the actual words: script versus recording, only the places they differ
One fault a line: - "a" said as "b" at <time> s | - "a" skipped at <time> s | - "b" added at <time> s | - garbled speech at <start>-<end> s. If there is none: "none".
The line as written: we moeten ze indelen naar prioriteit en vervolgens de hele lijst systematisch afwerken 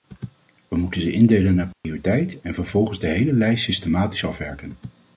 none